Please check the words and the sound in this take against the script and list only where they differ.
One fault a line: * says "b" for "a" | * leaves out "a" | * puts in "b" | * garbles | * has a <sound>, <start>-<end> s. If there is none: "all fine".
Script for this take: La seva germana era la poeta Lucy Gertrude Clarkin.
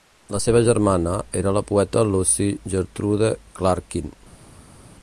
all fine